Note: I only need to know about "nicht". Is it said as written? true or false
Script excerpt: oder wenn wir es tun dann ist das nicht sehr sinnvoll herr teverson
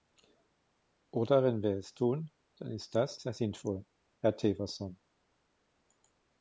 false